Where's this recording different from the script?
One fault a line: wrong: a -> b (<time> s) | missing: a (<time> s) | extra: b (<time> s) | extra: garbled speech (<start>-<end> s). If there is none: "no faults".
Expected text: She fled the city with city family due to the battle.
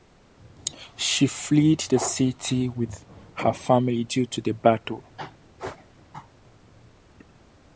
wrong: city -> her (3.4 s)